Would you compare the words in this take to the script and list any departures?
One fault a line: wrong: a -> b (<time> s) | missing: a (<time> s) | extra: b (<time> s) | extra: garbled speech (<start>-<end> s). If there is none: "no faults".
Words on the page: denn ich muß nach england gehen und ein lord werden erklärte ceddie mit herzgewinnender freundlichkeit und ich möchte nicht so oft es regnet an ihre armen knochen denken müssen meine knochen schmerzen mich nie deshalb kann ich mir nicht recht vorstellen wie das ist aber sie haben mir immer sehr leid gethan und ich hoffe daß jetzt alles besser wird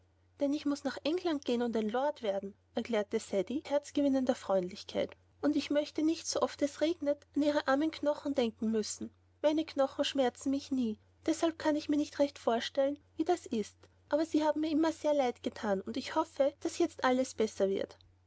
missing: mit (3.6 s)